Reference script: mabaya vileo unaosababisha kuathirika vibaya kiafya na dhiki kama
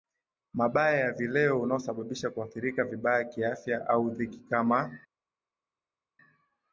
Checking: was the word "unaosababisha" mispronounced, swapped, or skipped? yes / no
no